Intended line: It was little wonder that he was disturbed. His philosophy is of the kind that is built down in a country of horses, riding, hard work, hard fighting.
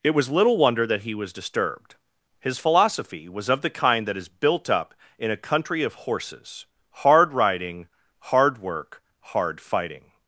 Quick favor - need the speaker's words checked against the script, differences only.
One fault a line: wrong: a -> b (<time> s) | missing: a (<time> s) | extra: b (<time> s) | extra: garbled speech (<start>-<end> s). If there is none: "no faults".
wrong: is -> was (3.3 s)
wrong: down -> up (4.7 s)
extra: hard (6.9 s)